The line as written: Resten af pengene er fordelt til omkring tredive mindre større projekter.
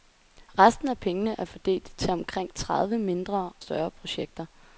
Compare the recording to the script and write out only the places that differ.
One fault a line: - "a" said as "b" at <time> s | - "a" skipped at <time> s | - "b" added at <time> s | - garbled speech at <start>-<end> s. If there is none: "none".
none